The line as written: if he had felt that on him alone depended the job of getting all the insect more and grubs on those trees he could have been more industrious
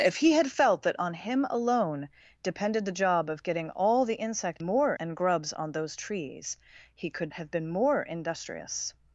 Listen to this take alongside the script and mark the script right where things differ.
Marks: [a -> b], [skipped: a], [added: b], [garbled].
if he had felt that on him alone depended the job of getting all the insect more and grubs on those trees he could have been more industrious